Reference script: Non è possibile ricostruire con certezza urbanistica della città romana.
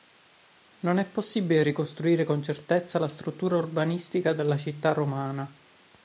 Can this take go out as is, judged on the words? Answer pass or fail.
fail